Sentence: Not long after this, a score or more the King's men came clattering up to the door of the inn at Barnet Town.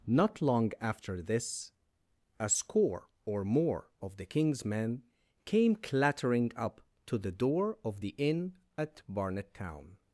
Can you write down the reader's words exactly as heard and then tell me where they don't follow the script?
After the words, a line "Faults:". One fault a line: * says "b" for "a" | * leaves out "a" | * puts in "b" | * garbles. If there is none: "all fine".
Not long after this, a score or more of the King's men came clattering up to the door of the inn at Barnet Town.
Faults:
* puts in "of"